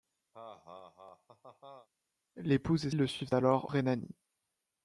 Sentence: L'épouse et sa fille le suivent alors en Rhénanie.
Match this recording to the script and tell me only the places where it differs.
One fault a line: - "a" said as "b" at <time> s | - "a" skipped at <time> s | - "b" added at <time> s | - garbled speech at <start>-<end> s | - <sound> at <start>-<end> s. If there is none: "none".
- laugh at 0.3-1.9 s
- "sa fille" skipped at 2.9 s
- "en" skipped at 3.7 s